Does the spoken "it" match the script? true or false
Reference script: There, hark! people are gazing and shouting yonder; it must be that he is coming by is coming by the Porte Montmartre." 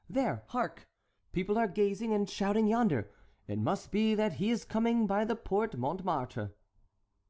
true